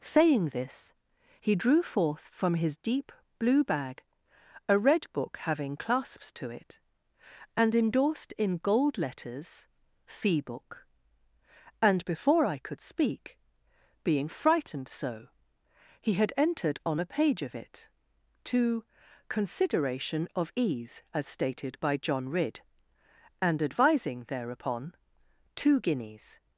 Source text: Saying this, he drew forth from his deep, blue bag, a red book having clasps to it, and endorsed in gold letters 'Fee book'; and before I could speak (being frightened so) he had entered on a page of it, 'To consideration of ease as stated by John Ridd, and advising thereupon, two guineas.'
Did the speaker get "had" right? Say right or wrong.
right